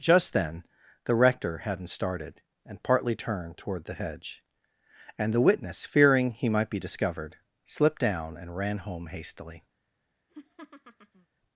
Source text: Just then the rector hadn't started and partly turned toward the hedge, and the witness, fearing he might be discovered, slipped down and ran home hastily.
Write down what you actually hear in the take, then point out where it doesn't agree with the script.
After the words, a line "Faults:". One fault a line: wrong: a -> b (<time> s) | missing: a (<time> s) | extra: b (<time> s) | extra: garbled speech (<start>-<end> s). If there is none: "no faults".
Just then the rector hadn't started and partly turned toward the hedge, and the witness, fearing he might be discovered, slipped down and ran home hastily.
Faults:
no faults